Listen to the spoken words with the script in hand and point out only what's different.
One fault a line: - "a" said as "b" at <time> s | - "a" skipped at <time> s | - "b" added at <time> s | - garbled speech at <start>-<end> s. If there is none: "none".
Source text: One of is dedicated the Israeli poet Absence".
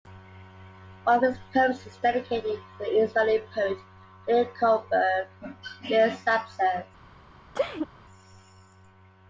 - "his poems" added at 1.2 s
- "to" added at 2.5 s
- "Leah Goldberg Leah's" added at 4.3 s